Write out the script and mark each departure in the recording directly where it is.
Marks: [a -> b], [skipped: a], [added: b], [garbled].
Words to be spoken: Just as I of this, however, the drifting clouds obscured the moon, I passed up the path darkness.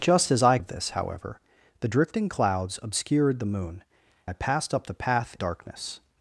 Just as I of this, however, the drifting clouds obscured the moon, I passed up the path darkness.